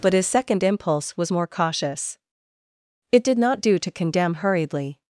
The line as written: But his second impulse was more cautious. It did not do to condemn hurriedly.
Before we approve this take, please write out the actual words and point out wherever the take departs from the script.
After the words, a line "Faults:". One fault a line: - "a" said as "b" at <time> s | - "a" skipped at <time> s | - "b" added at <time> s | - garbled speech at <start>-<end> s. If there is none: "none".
But his second impulse was more cautious. It did not do to condemn hurriedly.
Faults:
none